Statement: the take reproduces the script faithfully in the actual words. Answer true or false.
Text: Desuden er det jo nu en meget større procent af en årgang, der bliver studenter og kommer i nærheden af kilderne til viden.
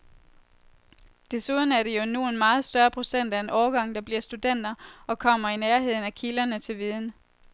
true